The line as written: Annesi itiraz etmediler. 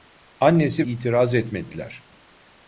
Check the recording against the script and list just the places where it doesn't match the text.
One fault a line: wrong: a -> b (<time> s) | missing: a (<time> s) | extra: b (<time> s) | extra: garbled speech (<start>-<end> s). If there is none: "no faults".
no faults